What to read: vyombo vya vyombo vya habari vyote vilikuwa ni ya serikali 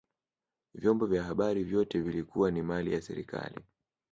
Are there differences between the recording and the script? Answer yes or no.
yes